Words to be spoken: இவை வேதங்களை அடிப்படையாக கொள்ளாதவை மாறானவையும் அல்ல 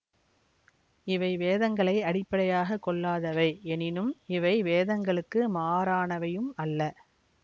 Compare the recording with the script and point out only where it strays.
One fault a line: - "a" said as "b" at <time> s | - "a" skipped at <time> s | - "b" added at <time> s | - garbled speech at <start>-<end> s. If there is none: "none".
- "எனினும் இவை வேதங்களுக்கு" added at 3.7 s